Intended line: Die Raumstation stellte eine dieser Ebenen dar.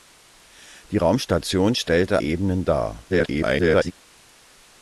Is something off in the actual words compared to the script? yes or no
yes